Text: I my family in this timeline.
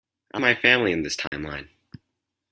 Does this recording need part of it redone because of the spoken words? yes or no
no